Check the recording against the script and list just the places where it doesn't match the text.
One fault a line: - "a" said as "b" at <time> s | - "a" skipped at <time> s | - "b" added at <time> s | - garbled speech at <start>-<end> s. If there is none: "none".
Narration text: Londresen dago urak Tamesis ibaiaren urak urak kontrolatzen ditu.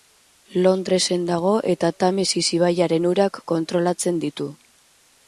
- "urak" said as "eta" at 1.7 s
- "urak" skipped at 3.4 s